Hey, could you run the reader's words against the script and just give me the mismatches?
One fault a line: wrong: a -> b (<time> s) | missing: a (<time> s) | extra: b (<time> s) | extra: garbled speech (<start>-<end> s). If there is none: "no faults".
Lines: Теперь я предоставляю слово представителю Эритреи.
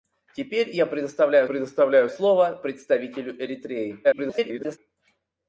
extra: предоставляю (1.4 s)
extra: garbled speech (4.0-4.8 s)